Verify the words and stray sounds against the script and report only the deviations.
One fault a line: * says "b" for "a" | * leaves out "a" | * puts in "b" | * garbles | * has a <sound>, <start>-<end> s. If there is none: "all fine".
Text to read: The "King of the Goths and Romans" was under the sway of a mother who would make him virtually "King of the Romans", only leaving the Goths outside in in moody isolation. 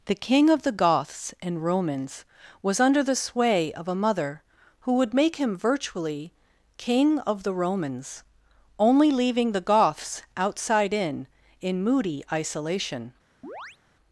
* has a chirp, 13.4-13.8 s